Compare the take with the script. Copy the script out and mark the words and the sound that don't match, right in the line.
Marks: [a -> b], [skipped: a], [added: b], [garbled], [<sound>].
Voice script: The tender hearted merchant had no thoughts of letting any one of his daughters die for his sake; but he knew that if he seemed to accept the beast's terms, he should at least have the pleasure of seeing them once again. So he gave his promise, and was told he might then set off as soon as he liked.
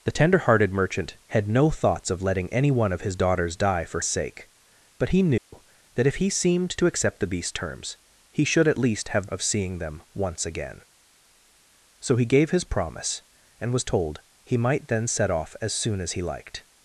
The tender hearted merchant had no thoughts of letting any one of his daughters die for [skipped: his] sake; but he knew [dropout] that if he seemed to accept the beast's terms, he should at least have [skipped: the pleasure] of seeing them once again. So he gave his promise, and was told he might then set off as soon as he liked.